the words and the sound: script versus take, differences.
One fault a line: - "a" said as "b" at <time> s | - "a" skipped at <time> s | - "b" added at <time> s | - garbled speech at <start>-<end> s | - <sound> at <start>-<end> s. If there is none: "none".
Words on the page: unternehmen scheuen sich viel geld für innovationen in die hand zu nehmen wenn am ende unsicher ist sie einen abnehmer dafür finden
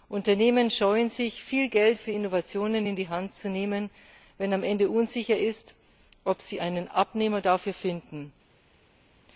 - "ob" added at 6.2 s